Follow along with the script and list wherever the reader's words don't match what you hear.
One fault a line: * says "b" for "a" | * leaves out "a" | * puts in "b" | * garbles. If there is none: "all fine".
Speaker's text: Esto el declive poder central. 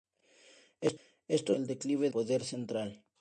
all fine